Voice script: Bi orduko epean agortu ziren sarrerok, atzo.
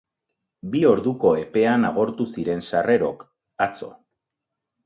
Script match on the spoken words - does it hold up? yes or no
yes